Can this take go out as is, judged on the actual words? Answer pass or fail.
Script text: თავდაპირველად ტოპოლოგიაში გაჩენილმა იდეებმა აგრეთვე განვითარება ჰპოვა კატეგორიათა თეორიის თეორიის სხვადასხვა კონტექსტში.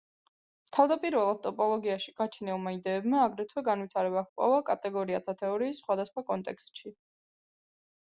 fail